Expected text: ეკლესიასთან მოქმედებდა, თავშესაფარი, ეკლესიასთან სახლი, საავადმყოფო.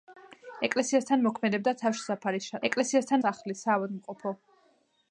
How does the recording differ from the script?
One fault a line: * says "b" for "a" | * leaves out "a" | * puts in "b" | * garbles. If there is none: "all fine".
all fine